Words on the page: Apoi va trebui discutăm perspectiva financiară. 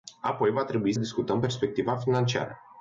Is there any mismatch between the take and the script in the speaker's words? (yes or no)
no